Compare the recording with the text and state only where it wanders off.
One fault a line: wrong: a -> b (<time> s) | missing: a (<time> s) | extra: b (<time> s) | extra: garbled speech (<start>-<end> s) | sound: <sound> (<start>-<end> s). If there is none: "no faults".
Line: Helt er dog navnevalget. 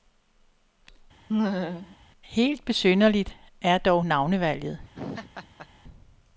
sound: laugh (1.3-2.0 s)
extra: besynderligt (2.6 s)
sound: laugh (4.9-5.7 s)